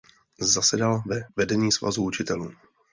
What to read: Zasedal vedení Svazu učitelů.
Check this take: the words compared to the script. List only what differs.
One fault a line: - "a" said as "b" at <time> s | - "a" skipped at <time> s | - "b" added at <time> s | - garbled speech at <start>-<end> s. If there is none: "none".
- "ve" added at 1.1 s